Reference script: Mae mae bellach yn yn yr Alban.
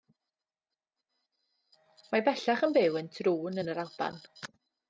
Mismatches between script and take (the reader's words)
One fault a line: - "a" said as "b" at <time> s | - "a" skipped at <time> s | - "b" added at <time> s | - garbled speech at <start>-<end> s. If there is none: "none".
- "mae" skipped at 2.2 s
- "byw yn Troon" added at 2.8 s